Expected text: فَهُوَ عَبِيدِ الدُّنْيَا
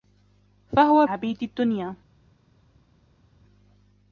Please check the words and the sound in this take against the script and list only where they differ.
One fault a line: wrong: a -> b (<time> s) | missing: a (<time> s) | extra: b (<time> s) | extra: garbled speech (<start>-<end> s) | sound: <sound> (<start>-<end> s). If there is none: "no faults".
no faults